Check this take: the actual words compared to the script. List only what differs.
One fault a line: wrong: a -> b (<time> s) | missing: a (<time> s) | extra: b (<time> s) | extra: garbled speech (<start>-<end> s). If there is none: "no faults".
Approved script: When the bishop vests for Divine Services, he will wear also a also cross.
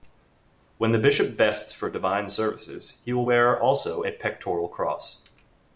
wrong: also -> pectoral (4.1 s)